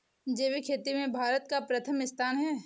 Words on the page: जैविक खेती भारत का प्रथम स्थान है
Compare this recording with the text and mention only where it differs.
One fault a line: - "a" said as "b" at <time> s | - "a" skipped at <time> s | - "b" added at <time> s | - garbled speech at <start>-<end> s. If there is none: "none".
- "में" added at 0.9 s